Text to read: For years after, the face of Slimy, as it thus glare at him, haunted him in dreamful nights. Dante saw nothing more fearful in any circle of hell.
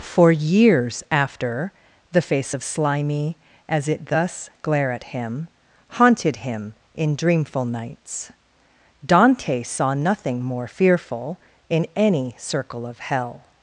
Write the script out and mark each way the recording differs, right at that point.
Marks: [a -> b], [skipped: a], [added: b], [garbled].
For years after, the face of Slimy, as it thus glare at him, haunted him in dreamful nights. Dante saw nothing more fearful in any circle of hell.